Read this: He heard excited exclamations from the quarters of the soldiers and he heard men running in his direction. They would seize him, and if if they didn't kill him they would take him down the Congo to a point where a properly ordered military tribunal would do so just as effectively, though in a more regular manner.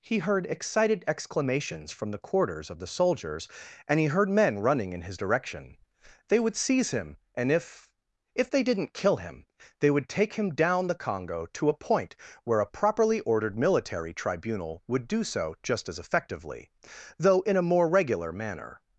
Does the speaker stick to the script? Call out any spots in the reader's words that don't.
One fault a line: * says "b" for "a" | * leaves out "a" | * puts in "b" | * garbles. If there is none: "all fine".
all fine